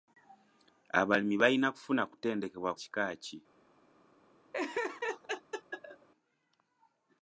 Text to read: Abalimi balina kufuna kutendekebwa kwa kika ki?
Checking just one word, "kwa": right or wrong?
wrong